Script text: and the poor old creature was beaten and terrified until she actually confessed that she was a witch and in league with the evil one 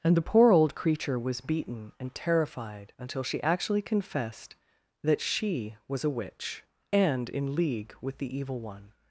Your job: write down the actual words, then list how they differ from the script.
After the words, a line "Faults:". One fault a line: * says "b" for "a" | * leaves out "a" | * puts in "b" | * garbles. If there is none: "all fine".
and the poor old creature was beaten and terrified until she actually confessed that she was a witch and in league with the evil one
Faults:
all fine